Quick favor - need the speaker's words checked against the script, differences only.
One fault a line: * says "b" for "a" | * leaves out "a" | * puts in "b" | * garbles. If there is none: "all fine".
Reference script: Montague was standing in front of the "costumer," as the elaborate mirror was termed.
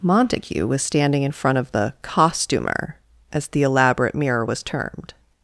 all fine